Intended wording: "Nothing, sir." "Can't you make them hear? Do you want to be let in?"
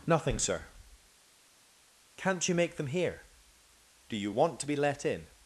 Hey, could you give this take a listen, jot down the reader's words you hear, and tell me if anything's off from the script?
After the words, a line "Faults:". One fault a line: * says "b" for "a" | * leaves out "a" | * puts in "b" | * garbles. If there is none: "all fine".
"Nothing, sir." "Can't you make them hear? Do you want to be let in?"
Faults:
all fine